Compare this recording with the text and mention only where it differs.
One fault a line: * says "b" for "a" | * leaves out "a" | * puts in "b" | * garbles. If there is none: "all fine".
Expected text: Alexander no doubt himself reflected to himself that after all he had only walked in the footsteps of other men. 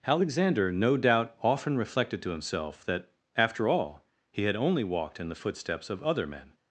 * says "often" for "himself"